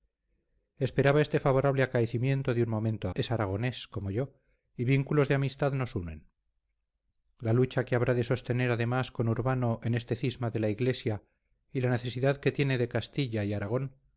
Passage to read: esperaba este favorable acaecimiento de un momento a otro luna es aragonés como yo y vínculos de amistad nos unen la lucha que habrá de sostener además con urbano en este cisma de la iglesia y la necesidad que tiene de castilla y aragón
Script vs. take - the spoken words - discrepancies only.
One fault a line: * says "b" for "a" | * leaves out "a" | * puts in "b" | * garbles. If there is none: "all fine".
* leaves out "otro luna"